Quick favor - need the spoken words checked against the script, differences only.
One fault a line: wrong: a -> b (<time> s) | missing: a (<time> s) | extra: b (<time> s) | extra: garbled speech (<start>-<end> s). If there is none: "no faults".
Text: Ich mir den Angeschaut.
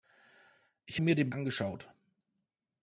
no faults